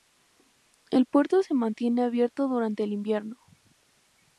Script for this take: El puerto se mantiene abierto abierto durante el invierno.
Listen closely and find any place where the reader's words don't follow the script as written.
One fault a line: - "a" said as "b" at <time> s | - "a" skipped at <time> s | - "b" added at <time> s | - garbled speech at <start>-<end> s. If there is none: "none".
- "abierto" skipped at 2.5 s